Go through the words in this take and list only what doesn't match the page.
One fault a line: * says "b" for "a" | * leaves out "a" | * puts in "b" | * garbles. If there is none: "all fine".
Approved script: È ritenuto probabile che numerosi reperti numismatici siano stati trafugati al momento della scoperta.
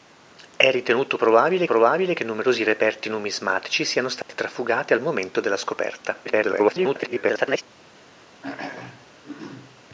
* puts in "probabile"
* garbles